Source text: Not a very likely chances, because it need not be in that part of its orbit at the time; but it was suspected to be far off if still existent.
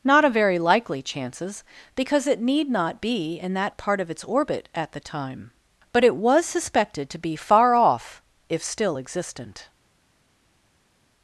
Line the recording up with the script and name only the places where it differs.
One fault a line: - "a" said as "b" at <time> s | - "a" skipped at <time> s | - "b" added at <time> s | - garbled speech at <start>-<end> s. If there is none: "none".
none